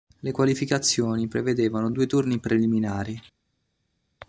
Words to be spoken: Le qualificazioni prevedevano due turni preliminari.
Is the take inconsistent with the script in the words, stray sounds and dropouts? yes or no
no